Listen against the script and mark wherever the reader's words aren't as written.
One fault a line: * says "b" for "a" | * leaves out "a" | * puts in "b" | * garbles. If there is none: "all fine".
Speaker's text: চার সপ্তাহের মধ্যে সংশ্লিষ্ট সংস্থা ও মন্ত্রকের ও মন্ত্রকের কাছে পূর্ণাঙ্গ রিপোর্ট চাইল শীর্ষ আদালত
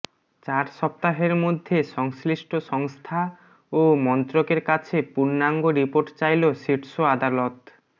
* leaves out "ও মন্ত্রকের"